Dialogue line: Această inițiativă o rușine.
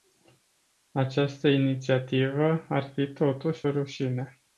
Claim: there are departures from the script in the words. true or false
true